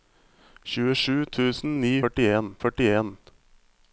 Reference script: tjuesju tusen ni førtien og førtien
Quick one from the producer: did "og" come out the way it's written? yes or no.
yes